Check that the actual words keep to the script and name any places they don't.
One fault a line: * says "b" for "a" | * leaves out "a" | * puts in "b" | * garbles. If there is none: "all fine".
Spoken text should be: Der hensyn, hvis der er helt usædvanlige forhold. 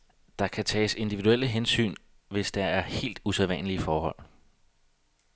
* puts in "kan tages individuelle"